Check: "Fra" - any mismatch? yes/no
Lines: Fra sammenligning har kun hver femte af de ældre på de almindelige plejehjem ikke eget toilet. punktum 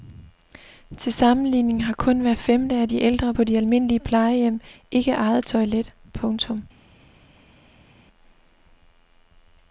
yes